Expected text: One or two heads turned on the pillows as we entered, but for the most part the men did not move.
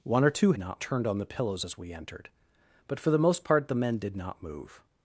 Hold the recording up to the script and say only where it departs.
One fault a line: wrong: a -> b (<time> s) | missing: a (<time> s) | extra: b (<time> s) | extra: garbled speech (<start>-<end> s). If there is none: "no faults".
wrong: heads -> not (0.6 s)